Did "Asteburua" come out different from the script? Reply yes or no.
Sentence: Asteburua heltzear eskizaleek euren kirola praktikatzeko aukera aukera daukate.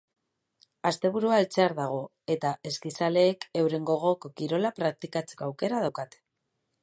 no